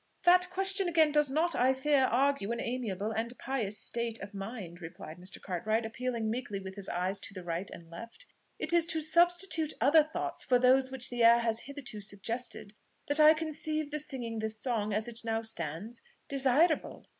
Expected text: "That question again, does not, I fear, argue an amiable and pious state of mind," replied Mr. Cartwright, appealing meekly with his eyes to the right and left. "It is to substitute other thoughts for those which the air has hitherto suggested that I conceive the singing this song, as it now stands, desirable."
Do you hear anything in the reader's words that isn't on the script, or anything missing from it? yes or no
no